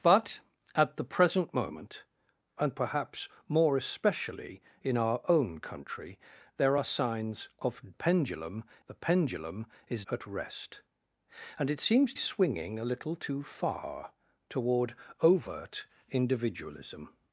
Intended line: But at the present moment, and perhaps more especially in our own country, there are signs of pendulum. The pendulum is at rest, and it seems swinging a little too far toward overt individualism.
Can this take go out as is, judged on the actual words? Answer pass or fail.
pass